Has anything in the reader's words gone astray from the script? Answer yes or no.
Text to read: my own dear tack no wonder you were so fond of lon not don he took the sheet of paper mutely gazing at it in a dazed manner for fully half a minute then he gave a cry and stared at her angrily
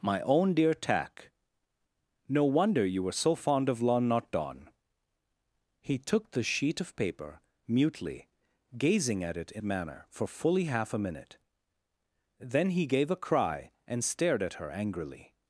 yes